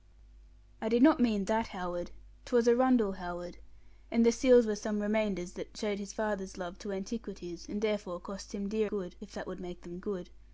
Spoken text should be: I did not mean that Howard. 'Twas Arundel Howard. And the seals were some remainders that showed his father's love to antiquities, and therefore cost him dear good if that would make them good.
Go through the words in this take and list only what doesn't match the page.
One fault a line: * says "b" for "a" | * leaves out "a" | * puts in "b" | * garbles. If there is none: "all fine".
all fine